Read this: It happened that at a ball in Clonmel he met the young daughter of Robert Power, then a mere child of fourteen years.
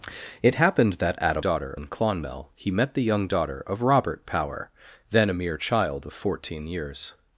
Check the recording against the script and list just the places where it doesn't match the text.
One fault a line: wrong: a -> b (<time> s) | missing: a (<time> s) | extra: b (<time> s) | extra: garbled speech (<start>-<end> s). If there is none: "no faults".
wrong: ball -> daughter (1.4 s)